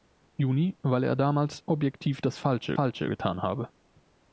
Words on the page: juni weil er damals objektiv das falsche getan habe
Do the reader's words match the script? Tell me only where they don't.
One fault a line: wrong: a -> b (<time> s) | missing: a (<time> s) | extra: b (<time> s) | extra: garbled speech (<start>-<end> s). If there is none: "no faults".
extra: falsche (2.7 s)